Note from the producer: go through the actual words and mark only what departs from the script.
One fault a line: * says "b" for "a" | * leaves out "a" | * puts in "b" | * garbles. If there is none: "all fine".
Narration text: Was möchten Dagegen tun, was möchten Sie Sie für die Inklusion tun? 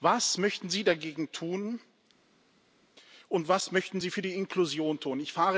* puts in "Sie"
* puts in "und"
* leaves out "Sie"